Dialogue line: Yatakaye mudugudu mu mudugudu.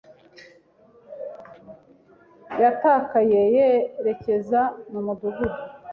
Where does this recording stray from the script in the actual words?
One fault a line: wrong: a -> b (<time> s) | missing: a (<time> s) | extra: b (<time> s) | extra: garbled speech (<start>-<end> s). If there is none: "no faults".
wrong: mudugudu -> yerekeza (3.5 s)